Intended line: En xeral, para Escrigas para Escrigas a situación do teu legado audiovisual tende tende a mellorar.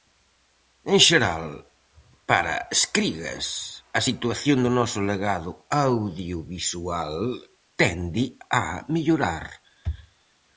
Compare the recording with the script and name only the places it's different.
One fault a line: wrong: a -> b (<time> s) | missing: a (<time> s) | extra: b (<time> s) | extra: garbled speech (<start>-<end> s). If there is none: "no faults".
missing: para Escrigas (3.5 s)
wrong: teu -> noso (4.8 s)
missing: tende (8.2 s)